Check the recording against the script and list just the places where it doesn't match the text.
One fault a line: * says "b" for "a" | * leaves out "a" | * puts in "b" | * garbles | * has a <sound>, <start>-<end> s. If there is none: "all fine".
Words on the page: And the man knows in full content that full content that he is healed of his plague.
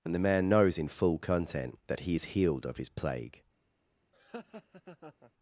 * leaves out "full content that"
* has a laugh, 4.1-5.3 s